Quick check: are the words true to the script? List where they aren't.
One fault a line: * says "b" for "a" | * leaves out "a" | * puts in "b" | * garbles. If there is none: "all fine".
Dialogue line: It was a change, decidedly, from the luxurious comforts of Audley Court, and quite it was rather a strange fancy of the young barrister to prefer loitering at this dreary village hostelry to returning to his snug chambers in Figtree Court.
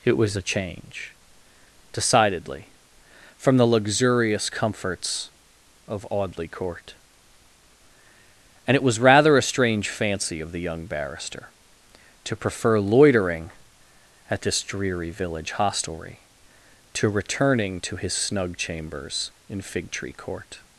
* leaves out "quite"